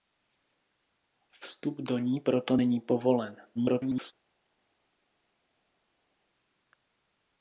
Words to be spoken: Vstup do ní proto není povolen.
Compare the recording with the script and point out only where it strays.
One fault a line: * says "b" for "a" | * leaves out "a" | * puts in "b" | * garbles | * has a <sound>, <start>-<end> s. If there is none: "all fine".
* garbles